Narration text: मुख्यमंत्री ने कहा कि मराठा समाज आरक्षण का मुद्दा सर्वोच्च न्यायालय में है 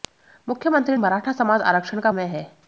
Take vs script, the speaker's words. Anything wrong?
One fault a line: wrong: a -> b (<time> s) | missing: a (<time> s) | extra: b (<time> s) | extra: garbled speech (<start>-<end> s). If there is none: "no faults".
missing: ने कहा कि (0.9 s)
missing: मुद्दा सर्वोच्च न्यायालय (2.1 s)